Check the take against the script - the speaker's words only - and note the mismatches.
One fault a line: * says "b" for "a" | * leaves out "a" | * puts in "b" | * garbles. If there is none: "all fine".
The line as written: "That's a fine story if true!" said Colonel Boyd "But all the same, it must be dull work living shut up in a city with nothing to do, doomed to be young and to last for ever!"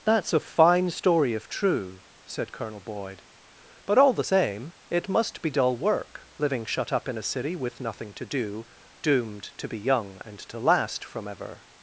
* says "from" for "for"